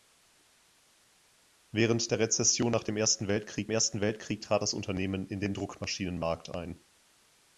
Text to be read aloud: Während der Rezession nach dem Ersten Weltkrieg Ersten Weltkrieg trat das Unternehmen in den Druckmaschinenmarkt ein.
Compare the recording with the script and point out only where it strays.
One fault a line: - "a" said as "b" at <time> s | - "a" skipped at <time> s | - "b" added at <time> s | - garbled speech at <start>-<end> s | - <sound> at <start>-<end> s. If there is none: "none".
none